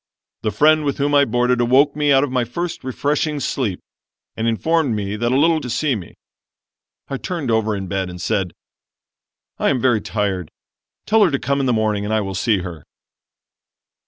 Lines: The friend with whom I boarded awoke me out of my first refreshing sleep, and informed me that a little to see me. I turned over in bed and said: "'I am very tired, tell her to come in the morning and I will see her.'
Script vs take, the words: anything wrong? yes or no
no